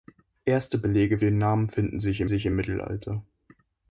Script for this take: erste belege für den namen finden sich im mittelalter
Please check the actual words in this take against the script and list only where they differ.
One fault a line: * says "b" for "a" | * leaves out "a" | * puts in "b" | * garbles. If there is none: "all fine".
* leaves out "für"
* puts in "sich im"